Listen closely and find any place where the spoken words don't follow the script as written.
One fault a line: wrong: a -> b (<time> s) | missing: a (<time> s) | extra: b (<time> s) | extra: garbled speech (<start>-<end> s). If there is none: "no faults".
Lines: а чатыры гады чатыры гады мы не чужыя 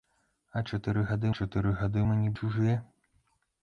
no faults